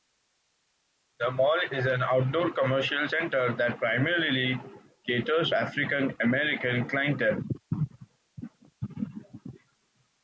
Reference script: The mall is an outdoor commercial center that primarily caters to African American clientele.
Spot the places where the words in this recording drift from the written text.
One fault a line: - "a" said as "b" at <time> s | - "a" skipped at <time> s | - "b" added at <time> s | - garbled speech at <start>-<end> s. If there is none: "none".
- "to" skipped at 5.5 s